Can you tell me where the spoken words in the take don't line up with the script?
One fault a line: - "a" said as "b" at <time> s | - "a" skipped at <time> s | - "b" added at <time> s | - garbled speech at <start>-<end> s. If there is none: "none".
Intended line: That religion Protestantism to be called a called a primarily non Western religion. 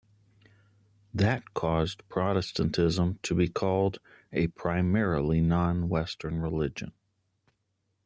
- "religion" said as "caused" at 1.5 s
- "called a" skipped at 4.5 s